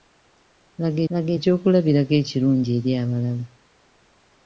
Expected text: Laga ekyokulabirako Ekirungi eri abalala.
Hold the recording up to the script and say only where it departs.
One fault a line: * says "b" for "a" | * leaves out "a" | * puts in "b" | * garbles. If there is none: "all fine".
* puts in "laga"